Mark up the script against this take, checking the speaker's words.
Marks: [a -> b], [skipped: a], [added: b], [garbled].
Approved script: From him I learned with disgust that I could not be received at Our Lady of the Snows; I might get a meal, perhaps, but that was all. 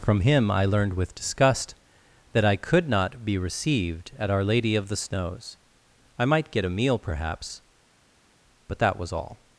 From him I learned with disgust that I could not be received at Our Lady of the Snows; I might get a meal, perhaps, but that was all.